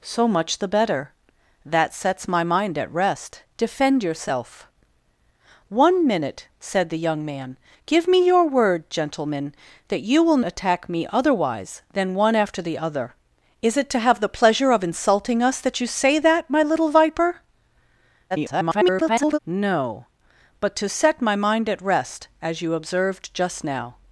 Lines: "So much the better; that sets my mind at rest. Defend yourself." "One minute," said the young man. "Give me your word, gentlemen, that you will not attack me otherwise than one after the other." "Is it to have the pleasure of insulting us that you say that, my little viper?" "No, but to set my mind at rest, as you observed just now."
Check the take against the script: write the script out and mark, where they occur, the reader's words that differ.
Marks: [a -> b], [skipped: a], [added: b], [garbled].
"So much the better; that sets my mind at rest. Defend yourself." "One minute," said the young man. "Give me your word, gentlemen, that you will [skipped: not] attack me otherwise than one after the other." "Is it to have the pleasure of insulting us that you say that, my little viper?" [garbled] "No, but to set my mind at rest, as you observed just now."